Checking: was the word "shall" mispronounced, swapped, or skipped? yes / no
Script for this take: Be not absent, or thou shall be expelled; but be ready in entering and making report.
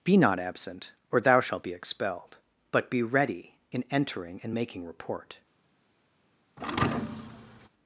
yes